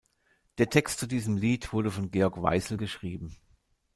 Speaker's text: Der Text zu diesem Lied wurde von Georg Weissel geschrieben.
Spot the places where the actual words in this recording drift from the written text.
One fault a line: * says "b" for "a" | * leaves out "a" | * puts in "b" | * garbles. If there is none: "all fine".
all fine